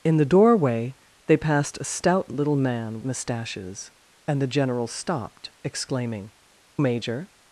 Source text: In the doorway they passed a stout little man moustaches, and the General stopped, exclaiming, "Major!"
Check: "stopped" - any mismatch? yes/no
no